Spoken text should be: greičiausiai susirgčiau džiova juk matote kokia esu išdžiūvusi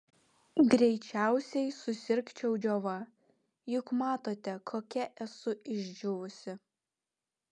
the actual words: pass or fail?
pass